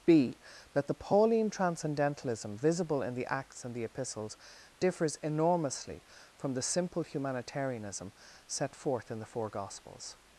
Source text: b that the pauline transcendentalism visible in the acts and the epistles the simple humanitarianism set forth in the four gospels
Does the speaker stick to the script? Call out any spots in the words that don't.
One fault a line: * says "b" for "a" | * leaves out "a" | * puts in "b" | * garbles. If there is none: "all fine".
* puts in "differs enormously from"